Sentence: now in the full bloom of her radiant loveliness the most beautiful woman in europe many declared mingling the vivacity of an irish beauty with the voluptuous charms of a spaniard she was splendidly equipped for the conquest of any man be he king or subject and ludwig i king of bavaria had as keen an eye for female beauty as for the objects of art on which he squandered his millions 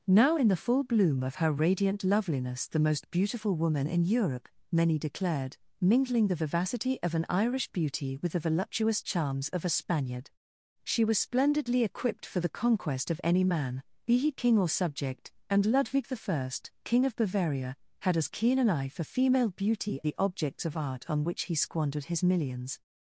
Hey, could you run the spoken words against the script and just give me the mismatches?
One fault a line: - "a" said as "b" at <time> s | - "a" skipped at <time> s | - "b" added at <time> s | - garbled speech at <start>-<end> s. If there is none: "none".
- "as for" skipped at 20.0 s